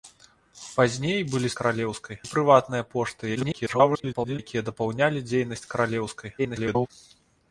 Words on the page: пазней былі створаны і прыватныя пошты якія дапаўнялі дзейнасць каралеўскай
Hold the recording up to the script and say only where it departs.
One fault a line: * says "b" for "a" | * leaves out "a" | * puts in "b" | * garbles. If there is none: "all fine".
* says "каралеўскай" for "створаны"
* garbles
* garbles